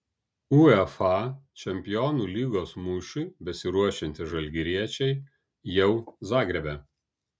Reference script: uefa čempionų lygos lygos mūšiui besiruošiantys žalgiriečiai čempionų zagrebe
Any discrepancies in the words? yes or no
yes